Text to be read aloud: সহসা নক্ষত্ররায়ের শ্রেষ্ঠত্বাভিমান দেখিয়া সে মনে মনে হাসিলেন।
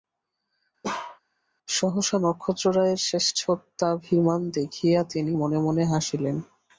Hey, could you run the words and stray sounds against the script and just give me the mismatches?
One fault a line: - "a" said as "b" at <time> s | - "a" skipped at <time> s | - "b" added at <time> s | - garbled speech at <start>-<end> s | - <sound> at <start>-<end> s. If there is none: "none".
- bark at 0.8-1.2 s
- "সে" said as "তিনি" at 5.0 s